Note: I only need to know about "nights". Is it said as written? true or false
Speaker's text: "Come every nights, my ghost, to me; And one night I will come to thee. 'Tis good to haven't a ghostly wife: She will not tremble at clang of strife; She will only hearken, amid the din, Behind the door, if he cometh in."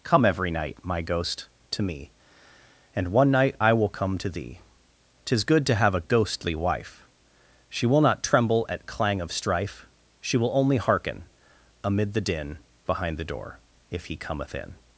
false